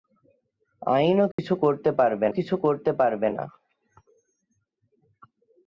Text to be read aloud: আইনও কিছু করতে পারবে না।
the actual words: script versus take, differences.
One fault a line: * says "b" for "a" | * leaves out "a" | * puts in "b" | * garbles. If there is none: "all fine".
* puts in "কিছু করতে পারবে"